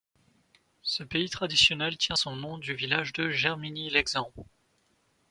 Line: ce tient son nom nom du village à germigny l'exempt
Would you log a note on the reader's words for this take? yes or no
yes